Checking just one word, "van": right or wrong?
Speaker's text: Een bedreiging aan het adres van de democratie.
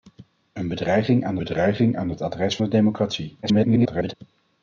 wrong